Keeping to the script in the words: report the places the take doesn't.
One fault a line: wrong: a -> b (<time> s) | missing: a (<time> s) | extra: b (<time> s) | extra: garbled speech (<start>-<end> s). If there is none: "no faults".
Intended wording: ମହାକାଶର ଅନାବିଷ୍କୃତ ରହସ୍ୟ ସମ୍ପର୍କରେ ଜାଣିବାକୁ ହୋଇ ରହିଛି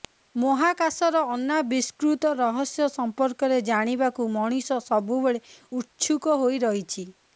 extra: ମଣିଷ ସବୁବେଳେ ଉତ୍ସୁକ (4.3 s)